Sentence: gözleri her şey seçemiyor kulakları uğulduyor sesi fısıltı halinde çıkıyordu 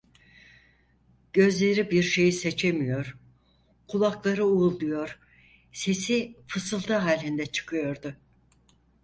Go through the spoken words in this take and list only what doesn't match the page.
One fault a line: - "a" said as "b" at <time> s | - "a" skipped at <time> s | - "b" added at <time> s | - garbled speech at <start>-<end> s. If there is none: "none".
- "her" said as "bir" at 1.9 s